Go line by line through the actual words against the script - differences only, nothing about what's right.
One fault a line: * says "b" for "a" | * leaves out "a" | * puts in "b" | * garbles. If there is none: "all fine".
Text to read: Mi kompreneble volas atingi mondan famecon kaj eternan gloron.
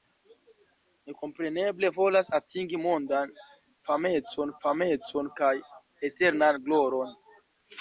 * puts in "famecon"